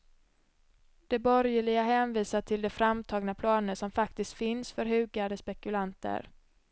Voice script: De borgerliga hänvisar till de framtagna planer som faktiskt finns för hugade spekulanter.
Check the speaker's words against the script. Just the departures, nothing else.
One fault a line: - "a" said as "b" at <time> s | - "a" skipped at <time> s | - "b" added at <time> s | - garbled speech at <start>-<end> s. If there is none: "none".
none